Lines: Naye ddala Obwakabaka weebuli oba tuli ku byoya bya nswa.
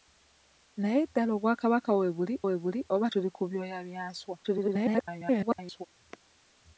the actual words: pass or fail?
fail